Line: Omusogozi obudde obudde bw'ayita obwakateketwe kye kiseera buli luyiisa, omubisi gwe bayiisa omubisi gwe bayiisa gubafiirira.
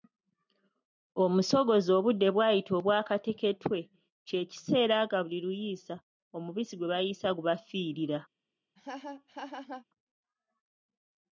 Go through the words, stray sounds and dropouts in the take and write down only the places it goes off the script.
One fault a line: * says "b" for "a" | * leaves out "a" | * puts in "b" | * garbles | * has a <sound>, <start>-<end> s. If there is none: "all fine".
* leaves out "obudde"
* puts in "nga"
* leaves out "omubisi gwe bayiisa"
* has a laugh, 8.8-9.9 s